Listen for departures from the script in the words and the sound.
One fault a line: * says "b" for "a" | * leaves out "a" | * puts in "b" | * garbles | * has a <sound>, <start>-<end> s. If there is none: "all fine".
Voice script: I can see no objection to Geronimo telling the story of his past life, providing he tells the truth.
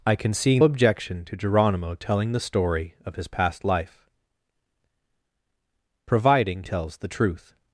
* leaves out "no"
* leaves out "he"